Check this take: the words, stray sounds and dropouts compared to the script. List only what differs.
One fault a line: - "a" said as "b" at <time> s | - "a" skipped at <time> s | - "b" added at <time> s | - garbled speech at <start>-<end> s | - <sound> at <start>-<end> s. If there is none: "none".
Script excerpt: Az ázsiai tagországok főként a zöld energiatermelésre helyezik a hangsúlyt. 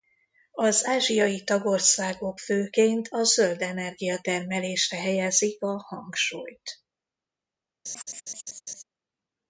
- laugh at 7.9-8.8 s